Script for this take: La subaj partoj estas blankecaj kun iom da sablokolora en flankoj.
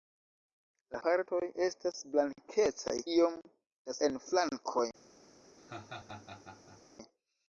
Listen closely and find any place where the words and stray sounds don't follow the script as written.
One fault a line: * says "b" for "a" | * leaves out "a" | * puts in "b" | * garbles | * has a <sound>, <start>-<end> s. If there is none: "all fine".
* leaves out "subaj"
* leaves out "kun"
* leaves out "sablokolora"
* has a laugh, 5.6-6.8 s